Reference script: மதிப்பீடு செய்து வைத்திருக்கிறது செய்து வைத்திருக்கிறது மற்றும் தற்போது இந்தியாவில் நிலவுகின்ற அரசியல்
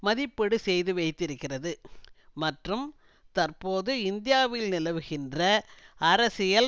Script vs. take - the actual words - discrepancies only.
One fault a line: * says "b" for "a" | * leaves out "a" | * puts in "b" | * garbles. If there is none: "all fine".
* leaves out "செய்து வைத்திருக்கிறது"